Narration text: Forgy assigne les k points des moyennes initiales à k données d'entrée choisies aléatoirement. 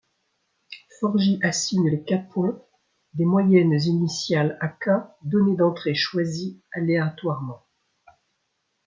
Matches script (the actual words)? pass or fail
pass